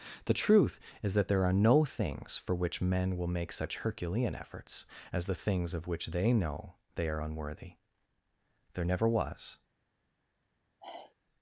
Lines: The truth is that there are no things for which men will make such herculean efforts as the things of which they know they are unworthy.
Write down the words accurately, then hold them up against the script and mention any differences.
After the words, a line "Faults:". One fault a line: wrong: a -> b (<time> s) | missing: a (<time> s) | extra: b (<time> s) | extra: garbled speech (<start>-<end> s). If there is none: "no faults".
The truth is that there are no things for which men will make such herculean efforts as the things of which they know they are unworthy. There never was
Faults:
extra: There never was (8.7 s)